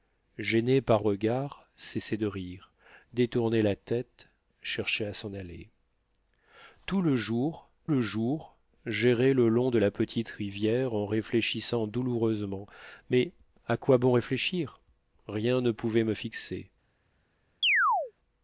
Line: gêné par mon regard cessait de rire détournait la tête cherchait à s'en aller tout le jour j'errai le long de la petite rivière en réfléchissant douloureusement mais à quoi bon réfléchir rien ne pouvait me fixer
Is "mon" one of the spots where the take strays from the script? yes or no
yes